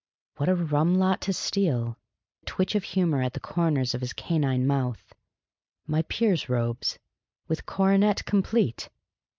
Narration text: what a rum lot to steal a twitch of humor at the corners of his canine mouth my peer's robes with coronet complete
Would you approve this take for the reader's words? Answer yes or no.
yes